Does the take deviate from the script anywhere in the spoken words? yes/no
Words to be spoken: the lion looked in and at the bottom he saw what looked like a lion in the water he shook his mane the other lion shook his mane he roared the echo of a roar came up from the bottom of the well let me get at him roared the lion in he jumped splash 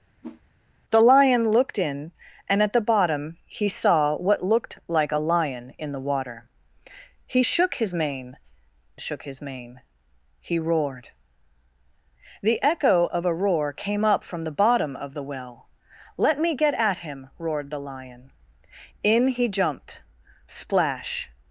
yes